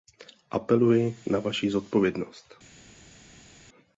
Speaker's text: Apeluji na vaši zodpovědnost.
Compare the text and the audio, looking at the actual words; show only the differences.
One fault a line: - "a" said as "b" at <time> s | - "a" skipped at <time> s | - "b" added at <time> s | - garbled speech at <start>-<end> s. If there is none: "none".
none